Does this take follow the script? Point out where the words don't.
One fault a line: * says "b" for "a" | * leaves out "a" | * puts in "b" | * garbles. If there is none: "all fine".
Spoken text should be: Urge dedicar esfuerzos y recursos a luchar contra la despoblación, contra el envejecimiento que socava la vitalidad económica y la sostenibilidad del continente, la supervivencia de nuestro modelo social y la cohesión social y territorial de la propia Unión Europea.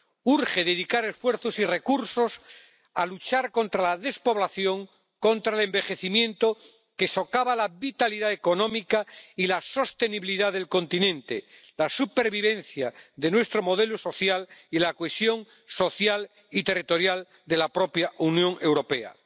all fine